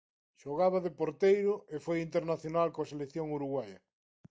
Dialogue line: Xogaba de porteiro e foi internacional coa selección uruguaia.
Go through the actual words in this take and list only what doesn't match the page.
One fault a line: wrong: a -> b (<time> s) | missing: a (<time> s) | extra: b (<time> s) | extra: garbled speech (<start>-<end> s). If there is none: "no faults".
no faults